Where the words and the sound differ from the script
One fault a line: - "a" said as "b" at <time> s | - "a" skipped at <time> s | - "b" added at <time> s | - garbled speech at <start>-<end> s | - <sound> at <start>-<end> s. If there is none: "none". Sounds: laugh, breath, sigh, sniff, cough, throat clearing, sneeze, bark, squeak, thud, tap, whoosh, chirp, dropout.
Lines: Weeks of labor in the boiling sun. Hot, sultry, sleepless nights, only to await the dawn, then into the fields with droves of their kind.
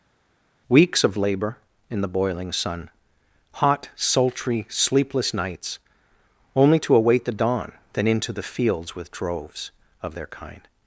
none